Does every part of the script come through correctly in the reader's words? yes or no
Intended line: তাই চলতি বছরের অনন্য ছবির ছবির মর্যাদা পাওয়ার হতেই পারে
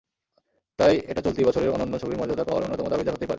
no